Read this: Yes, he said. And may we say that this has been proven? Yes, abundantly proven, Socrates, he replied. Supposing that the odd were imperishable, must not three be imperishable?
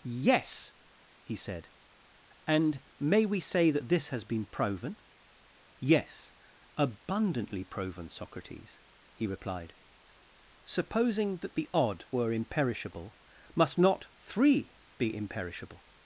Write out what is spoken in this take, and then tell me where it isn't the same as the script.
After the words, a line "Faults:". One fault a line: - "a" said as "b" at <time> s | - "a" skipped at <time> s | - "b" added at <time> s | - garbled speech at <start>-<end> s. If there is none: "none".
Yes, he said. And may we say that this has been proven? Yes, abundantly proven, Socrates, he replied. Supposing that the odd were imperishable, must not three be imperishable?
Faults:
none